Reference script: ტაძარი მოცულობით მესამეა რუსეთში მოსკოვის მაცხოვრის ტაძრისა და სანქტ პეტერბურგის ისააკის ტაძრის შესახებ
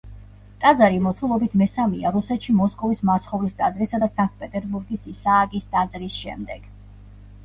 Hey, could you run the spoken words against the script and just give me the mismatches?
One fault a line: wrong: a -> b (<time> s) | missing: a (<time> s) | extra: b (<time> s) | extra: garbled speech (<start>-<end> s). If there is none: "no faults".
wrong: შესახებ -> შემდეგ (6.2 s)